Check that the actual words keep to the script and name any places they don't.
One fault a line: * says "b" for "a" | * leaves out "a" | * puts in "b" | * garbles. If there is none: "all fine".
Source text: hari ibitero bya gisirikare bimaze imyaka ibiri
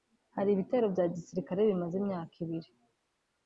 all fine